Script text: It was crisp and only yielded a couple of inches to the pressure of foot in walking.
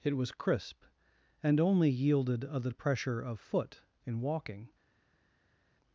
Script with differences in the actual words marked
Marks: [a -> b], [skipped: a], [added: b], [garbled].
It was crisp and only yielded a [skipped: couple of inches to] the pressure of foot in walking.